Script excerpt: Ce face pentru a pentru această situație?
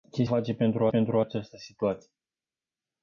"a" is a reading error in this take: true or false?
false